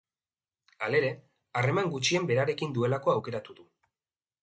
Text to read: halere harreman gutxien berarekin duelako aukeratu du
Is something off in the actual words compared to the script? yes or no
no